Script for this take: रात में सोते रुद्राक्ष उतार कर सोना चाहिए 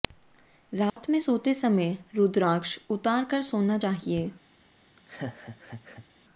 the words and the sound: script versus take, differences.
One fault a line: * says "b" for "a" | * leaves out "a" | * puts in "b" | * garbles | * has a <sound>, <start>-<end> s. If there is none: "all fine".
* has a dropout, 0.9-1.0 s
* puts in "समय"
* has a laugh, 5.0-6.1 s